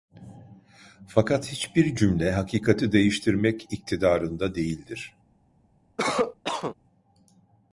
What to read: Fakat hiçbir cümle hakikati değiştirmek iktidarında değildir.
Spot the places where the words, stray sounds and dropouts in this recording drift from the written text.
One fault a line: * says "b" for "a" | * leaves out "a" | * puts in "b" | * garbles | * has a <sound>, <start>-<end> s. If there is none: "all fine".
* has a cough, 6.0-6.8 s